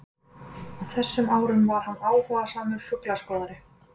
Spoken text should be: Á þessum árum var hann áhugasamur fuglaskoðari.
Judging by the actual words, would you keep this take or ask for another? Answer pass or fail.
pass